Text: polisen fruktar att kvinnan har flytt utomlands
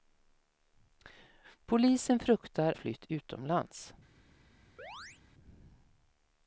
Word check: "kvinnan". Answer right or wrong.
wrong